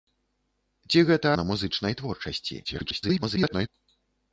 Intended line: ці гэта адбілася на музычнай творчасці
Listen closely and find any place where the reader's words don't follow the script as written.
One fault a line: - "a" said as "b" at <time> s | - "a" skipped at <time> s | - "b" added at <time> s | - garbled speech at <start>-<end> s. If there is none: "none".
- "адбілася" skipped at 1.3 s
- garbled speech at 2.6-3.7 s